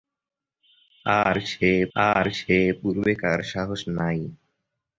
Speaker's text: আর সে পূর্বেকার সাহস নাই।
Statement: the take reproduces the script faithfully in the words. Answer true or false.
false